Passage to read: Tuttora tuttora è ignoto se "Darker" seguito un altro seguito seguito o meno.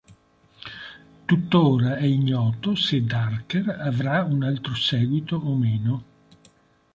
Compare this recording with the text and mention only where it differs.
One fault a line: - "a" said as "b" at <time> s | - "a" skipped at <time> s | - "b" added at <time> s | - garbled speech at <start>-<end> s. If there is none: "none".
- "tuttora" skipped at 2.0 s
- "seguito" said as "avrà" at 3.7 s
- "seguito" skipped at 5.3 s